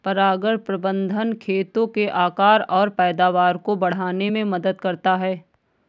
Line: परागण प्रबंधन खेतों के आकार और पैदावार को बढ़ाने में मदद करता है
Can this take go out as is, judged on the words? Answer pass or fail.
pass